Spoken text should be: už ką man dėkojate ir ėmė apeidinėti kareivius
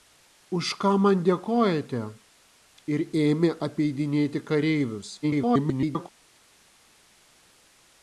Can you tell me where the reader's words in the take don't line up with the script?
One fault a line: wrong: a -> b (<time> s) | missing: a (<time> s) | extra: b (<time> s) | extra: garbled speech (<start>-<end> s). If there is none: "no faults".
extra: garbled speech (5.2-6.1 s)